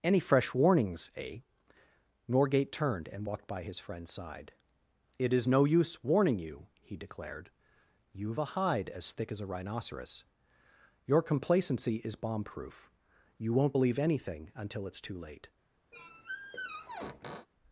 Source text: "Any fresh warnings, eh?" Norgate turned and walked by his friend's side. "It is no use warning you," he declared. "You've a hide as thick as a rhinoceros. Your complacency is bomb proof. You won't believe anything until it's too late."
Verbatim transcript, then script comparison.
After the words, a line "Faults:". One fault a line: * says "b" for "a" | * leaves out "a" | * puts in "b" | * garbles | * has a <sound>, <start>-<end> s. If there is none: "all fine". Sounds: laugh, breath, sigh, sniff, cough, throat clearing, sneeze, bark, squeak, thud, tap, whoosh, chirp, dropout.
"Any fresh warnings, eh?" Norgate turned and walked by his friend's side. "It is no use warning you," he declared. "You've a hide as thick as a rhinoceros. Your complacency is bomb proof. You won't believe anything until it's too late."
Faults:
* has a squeak, 15.9-17.5 s